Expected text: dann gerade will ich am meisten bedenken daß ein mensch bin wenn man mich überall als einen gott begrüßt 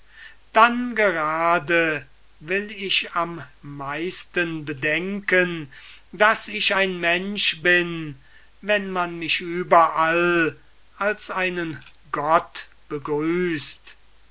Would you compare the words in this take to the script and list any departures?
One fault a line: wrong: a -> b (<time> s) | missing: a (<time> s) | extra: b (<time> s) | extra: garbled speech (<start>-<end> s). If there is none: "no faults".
extra: ich (6.5 s)